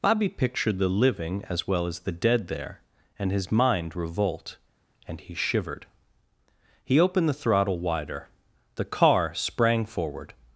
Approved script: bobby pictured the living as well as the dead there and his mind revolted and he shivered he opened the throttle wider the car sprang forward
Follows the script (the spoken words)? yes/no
no